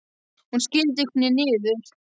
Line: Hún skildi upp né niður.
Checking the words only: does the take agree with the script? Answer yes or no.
yes